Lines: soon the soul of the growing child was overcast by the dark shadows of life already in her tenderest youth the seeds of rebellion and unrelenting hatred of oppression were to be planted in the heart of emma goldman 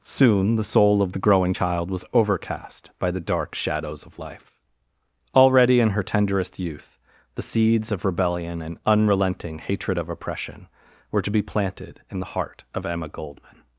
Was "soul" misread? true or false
false